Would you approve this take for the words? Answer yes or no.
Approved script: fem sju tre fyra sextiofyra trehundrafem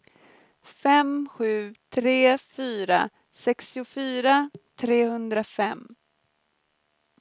yes